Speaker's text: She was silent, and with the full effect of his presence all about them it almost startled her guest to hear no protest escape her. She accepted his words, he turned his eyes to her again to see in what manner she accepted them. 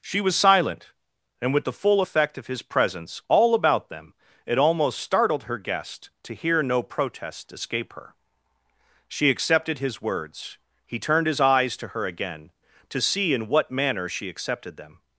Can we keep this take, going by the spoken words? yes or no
yes